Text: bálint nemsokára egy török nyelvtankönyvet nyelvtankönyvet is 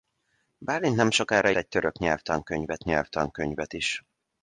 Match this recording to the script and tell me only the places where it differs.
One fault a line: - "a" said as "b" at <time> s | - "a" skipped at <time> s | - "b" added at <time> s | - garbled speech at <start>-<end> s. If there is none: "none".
none